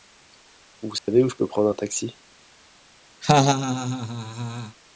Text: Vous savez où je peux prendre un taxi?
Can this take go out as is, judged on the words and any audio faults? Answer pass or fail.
fail